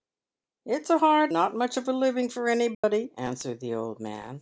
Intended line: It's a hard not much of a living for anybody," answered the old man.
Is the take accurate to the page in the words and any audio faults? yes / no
no